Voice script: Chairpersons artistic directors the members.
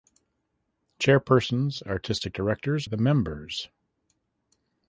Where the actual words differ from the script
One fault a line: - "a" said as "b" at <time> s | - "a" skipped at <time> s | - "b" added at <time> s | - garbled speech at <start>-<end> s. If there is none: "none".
none